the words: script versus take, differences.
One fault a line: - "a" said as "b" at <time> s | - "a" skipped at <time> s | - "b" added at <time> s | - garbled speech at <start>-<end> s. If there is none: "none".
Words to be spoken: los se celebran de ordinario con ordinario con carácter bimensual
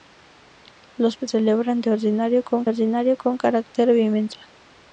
none